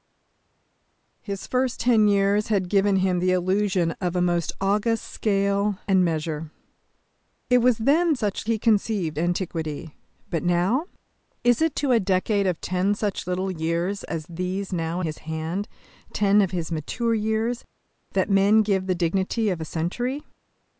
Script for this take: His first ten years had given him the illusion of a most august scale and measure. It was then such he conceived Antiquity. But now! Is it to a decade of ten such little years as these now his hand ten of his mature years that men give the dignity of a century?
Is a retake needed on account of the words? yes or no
no